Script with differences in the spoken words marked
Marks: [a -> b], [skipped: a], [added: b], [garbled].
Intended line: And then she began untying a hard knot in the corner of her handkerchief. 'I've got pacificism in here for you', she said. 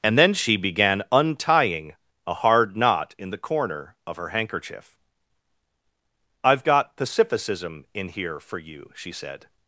And then she began untying a hard knot in the corner of her handkerchief. 'I've got pacificism in here for you', she said.